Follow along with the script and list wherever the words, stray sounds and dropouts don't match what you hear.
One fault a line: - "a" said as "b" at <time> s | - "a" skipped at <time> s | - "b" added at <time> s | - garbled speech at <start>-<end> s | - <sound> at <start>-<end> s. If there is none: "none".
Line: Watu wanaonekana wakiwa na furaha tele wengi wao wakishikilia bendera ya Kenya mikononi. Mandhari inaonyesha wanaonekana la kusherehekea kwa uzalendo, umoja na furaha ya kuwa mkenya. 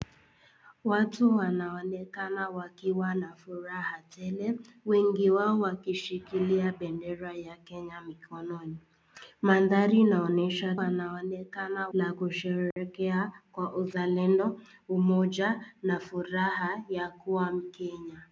- dropout at 12.7-12.8 s